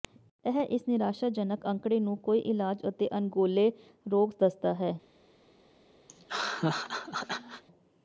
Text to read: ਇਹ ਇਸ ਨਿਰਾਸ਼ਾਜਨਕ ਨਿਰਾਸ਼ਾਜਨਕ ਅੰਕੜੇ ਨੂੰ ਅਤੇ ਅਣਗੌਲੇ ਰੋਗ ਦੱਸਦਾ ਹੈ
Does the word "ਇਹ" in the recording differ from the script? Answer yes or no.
no